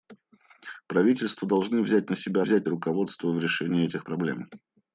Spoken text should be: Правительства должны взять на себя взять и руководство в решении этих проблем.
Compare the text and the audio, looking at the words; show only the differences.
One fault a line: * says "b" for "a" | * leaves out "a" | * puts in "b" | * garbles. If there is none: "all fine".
all fine